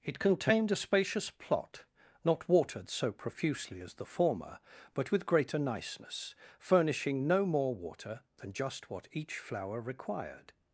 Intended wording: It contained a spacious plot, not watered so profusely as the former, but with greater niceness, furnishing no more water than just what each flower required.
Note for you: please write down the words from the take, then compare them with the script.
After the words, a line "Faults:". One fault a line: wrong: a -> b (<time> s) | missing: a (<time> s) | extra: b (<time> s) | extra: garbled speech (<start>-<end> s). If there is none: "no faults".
It contained a spacious plot, not watered so profusely as the former, but with greater niceness, furnishing no more water than just what each flower required.
Faults:
no faults